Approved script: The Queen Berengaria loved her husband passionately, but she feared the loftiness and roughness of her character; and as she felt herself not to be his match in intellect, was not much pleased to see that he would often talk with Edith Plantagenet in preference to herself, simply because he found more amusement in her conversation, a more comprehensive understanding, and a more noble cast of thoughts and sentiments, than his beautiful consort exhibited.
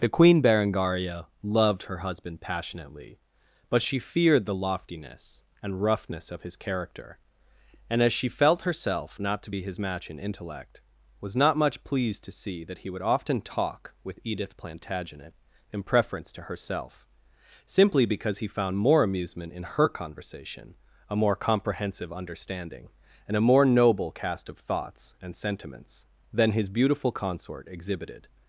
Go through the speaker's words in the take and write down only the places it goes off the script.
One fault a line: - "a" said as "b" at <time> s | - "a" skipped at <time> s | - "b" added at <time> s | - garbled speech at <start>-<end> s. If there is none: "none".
- "her" said as "his" at 6.4 s